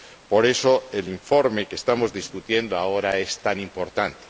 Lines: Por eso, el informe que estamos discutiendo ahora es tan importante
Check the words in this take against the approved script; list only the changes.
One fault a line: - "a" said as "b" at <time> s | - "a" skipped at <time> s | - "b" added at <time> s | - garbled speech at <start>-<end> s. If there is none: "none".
none